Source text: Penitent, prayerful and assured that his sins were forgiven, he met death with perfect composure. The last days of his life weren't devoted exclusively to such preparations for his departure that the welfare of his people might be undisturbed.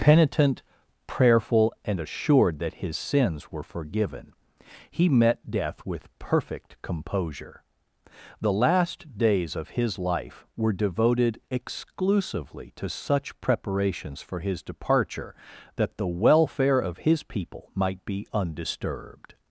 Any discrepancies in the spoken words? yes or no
yes